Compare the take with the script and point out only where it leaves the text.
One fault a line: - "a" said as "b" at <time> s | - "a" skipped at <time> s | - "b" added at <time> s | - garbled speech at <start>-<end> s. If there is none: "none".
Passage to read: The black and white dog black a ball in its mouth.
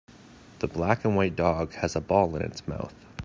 - "black" said as "has" at 1.7 s